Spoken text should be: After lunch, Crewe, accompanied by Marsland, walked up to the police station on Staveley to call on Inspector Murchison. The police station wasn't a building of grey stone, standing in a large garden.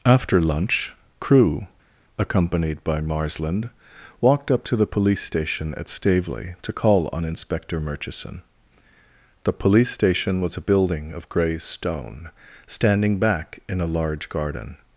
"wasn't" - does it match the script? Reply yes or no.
no